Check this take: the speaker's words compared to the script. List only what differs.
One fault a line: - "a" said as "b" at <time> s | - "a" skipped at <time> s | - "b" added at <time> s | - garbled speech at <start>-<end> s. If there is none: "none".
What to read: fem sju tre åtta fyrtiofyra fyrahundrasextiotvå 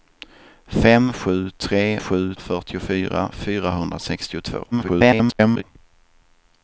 - "åtta" said as "sju" at 2.0 s
- garbled speech at 4.7-5.6 s